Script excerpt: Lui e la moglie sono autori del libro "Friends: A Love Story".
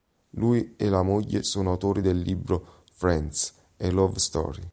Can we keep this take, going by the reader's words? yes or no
yes